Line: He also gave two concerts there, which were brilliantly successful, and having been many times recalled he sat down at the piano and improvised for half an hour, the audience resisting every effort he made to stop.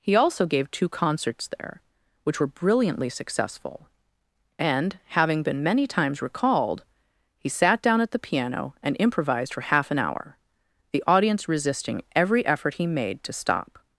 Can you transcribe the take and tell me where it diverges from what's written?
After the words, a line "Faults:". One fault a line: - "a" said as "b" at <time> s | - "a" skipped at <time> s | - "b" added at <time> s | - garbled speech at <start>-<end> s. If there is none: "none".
He also gave two concerts there, which were brilliantly successful, and having been many times recalled he sat down at the piano and improvised for half an hour, the audience resisting every effort he made to stop.
Faults:
none